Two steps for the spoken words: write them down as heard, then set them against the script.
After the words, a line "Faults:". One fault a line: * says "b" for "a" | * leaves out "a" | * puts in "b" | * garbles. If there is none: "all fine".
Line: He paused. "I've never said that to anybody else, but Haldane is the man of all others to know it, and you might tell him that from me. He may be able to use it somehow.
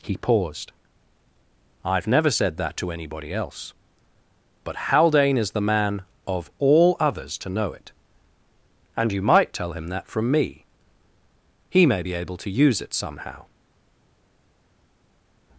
He paused. "I've never said that to anybody else, but Haldane is the man of all others to know it, and you might tell him that from me. He may be able to use it somehow.
Faults:
all fine